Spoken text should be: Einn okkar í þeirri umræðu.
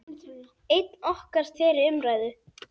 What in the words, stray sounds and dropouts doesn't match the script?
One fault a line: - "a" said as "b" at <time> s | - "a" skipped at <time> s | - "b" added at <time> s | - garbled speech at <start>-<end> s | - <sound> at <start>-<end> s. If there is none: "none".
none